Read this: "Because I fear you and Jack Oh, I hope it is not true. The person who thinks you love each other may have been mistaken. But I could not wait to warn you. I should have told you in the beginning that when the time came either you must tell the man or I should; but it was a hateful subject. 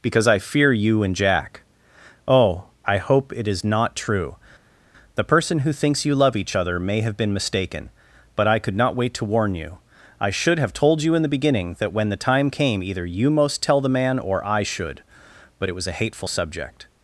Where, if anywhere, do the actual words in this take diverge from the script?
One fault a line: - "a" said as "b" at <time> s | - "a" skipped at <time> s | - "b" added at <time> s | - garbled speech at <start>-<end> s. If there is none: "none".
- "must" said as "most" at 13.3 s